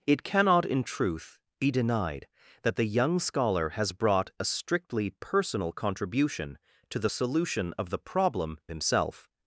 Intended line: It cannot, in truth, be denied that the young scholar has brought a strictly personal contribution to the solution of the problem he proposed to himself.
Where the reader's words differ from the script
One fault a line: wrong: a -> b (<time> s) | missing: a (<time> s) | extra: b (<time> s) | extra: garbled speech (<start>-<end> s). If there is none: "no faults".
missing: he proposed to (8.6 s)